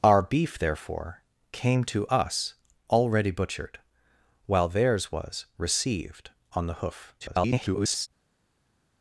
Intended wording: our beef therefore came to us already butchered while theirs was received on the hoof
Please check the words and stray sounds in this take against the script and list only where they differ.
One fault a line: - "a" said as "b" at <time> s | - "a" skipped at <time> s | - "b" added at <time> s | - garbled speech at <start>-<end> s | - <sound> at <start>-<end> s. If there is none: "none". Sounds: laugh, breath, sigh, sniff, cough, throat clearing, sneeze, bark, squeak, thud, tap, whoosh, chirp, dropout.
- garbled speech at 7.2-8.1 s